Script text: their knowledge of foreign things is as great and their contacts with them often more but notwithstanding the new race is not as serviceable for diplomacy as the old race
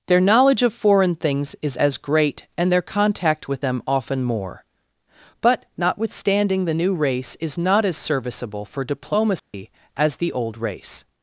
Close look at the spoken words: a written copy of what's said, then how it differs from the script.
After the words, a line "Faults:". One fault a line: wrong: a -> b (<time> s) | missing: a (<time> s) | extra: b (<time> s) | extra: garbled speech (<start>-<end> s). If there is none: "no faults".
their knowledge of foreign things is as great and their contact with them often more but notwithstanding the new race is not as serviceable for diplomacy as the old race
Faults:
wrong: contacts -> contact (2.8 s)